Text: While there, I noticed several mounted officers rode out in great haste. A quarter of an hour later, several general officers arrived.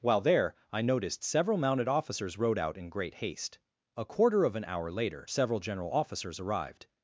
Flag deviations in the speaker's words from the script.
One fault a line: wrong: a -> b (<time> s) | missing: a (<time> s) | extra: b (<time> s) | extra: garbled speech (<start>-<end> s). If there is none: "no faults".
no faults